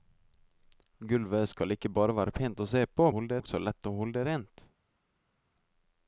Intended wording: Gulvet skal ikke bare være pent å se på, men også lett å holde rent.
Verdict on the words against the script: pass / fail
fail